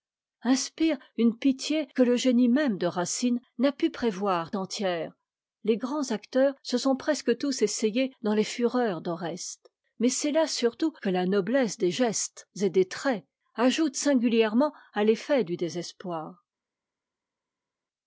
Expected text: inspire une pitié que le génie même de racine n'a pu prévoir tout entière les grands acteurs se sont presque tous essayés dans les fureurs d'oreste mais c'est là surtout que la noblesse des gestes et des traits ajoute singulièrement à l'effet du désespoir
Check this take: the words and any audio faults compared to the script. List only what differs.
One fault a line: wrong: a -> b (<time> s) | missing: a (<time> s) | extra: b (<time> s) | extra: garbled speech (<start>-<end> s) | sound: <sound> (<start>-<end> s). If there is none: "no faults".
missing: tout (4.5 s)